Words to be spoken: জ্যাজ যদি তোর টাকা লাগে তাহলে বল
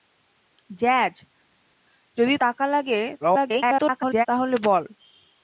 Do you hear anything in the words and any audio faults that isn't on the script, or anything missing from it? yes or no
yes